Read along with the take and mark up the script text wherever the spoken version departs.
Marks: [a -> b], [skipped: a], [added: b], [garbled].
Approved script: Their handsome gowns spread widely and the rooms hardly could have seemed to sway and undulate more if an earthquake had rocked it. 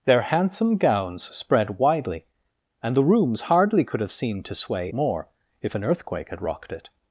Their handsome gowns spread widely and the rooms hardly could have seemed to sway [skipped: and undulate] more if an earthquake had rocked it.